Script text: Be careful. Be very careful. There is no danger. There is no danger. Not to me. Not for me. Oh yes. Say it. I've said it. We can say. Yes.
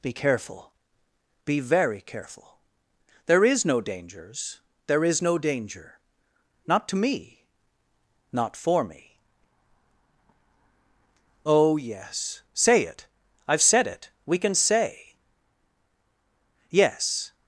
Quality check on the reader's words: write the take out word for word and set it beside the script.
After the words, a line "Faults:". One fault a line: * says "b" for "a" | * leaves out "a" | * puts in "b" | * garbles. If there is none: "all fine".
Be careful. Be very careful. There is no dangers. There is no danger. Not to me. Not for me. Oh yes. Say it. I've said it. We can say. Yes.
Faults:
* says "dangers" for "danger"